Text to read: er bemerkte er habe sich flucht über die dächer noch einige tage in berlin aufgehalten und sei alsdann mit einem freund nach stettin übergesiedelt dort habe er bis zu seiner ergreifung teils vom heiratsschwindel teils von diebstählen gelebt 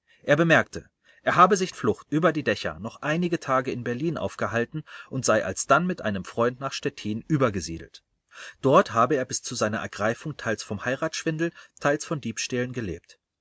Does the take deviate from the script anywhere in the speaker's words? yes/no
no